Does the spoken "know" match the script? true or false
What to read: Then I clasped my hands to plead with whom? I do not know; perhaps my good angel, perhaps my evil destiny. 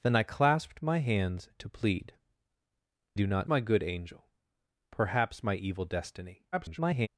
false